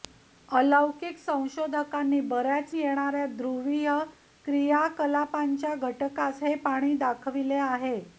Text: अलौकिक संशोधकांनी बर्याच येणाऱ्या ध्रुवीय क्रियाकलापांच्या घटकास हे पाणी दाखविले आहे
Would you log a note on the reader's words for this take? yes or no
no